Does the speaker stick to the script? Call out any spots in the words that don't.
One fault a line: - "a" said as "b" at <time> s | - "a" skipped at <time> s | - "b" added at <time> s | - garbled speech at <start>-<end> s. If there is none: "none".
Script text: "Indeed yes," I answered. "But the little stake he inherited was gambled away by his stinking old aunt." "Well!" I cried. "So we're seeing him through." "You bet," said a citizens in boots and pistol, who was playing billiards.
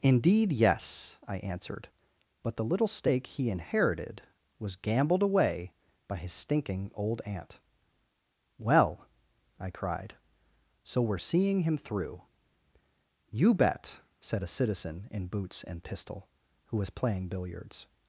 - "citizens" said as "citizen" at 14.5 s